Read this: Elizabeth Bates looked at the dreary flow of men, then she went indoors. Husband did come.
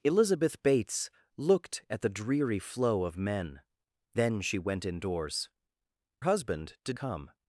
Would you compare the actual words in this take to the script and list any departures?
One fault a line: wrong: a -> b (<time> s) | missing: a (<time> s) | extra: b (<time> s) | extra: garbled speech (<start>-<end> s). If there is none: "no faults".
no faults